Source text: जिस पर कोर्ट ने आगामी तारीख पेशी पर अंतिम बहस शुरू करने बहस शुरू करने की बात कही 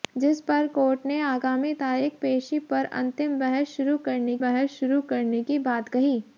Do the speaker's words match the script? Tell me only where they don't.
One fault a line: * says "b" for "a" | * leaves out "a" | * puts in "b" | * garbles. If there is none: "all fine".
all fine